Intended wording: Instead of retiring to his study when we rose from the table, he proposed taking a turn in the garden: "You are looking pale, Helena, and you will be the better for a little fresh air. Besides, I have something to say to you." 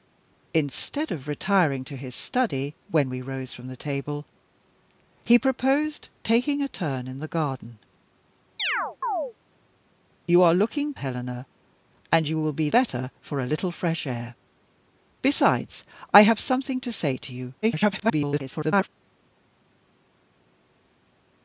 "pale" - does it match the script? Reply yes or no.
no